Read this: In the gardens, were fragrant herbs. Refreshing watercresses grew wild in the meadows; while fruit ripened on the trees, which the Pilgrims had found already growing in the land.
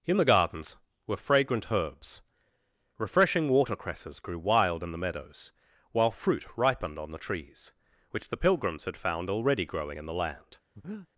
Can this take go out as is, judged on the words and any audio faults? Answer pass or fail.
fail